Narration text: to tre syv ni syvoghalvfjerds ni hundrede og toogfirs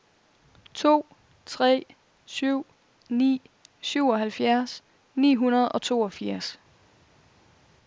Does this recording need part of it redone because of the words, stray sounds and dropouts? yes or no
no